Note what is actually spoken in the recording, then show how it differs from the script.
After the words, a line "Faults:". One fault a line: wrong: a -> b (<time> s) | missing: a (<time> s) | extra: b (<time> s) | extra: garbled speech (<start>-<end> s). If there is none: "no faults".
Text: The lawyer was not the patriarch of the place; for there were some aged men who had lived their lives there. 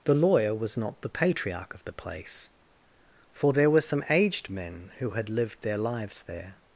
The lawyer was not the patriarch of the place; for there were some aged men who had lived their lives there.
Faults:
no faults